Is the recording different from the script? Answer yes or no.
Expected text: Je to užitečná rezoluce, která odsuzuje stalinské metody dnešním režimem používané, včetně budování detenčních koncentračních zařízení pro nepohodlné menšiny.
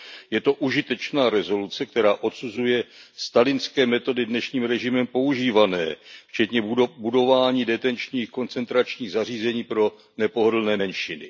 no